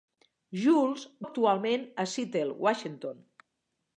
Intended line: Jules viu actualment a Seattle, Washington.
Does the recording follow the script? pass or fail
fail